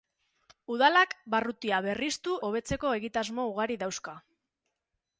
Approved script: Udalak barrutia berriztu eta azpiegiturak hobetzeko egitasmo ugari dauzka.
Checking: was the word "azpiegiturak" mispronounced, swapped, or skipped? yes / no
yes